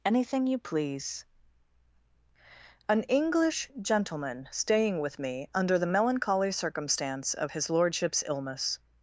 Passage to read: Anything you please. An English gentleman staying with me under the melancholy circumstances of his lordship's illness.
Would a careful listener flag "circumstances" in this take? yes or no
yes